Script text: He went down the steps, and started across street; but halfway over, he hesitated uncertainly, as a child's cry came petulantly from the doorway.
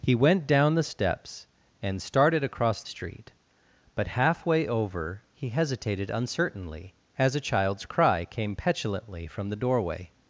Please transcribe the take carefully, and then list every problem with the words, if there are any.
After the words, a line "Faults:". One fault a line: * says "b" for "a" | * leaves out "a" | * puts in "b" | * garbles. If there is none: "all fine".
He went down the steps, and started across street; but halfway over, he hesitated uncertainly, as a child's cry came petulantly from the doorway.
Faults:
all fine